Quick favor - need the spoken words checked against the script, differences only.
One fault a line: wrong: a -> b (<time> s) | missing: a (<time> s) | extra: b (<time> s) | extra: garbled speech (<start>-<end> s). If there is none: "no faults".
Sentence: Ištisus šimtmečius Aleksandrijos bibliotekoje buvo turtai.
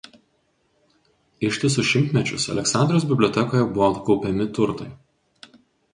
extra: kaupiami (4.1 s)